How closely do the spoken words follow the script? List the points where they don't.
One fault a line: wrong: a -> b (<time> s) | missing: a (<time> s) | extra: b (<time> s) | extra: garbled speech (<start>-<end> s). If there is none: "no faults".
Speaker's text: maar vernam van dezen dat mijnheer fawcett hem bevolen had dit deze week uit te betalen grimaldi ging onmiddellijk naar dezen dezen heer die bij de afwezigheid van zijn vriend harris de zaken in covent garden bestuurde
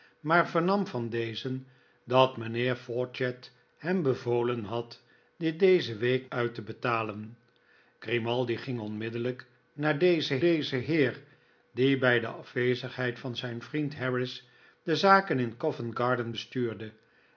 no faults